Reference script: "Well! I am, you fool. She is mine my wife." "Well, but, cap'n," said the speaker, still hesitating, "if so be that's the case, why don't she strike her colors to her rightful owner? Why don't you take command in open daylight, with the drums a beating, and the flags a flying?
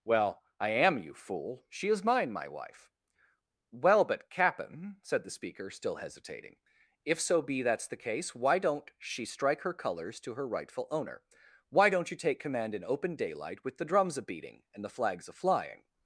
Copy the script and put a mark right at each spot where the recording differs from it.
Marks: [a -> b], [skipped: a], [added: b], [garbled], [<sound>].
"Well! I am, you fool. She is mine my wife." "Well, but, cap'n," said the speaker, still hesitating, "if so be that's the case, why don't she strike her colors to her rightful owner? Why don't you take command in open daylight, with the drums a beating, and the flags a flying?